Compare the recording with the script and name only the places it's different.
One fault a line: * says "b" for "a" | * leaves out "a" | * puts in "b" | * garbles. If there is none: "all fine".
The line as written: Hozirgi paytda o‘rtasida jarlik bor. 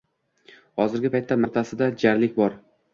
all fine